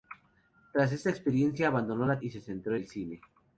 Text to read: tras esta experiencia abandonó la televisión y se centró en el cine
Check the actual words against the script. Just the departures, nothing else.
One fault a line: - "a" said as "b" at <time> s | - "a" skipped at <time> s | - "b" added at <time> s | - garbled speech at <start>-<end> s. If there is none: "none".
- "televisión" skipped at 2.2 s
- "en" skipped at 2.7 s